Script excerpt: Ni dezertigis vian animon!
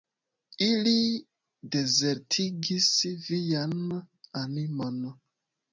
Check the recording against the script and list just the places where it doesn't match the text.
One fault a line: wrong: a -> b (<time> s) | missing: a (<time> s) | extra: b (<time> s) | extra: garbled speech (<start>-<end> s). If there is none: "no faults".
wrong: Ni -> Ili (0.7 s)